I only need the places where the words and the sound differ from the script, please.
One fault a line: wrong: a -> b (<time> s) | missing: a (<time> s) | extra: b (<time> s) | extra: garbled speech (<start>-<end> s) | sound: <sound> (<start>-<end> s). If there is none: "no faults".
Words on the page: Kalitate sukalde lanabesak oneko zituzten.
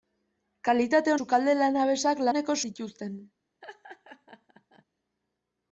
sound: laugh (3.6-4.8 s)